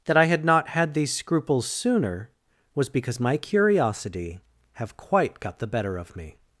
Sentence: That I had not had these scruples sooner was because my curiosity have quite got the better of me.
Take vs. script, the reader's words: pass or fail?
pass